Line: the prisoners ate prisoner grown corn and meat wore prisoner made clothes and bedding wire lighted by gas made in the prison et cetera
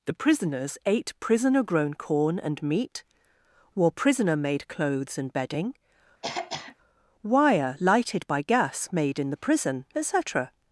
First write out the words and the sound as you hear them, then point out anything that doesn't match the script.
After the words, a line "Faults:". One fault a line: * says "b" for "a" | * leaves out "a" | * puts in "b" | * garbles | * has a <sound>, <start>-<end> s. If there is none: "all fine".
the prisoners ate prisoner grown corn and meat wore prisoner made clothes and bedding wire lighted by gas made in the prison et cetera
Faults:
* has a throat clearing, 6.2-6.8 s